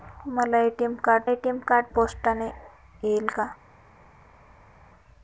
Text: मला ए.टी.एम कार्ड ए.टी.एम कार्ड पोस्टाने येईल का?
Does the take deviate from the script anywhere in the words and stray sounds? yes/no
no